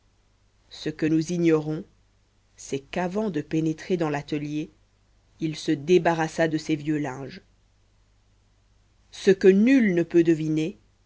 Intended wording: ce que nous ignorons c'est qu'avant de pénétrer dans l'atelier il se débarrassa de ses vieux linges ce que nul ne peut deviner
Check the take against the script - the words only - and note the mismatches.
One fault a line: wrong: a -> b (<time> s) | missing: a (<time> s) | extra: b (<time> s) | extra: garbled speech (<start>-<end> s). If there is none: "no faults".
no faults